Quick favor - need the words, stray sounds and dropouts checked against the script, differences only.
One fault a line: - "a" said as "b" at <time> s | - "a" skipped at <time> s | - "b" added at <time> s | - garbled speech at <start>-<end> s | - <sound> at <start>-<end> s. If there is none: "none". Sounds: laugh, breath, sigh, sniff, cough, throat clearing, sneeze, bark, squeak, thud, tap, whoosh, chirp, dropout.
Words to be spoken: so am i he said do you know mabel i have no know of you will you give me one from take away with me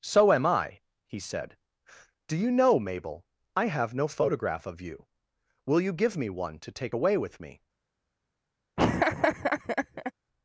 - "know" said as "photograph" at 4.1 s
- "from" said as "to" at 6.6 s
- laugh at 8.8-10.1 s